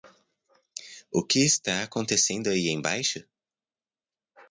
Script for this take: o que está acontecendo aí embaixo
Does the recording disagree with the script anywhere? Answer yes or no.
no